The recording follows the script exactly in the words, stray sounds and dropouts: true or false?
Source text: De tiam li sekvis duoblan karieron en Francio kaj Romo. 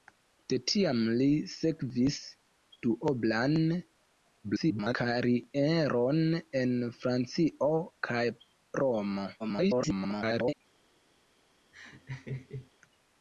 false